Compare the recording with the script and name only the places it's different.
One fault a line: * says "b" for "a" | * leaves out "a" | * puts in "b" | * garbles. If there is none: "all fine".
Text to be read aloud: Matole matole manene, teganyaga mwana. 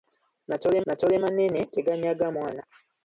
all fine